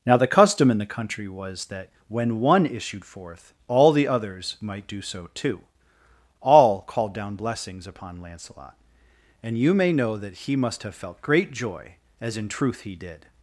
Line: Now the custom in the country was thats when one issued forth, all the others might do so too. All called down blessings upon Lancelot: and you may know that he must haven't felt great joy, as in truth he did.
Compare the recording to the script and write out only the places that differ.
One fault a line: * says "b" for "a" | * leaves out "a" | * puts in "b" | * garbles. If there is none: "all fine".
* says "that" for "thats"
* says "have" for "haven't"